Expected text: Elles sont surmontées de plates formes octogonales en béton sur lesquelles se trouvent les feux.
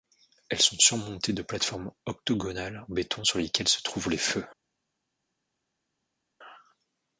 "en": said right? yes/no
yes